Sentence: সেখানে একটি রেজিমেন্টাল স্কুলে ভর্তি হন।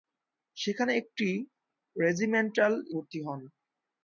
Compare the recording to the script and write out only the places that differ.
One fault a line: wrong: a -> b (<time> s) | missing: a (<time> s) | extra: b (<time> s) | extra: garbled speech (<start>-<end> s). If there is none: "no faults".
missing: স্কুলে (2.7 s)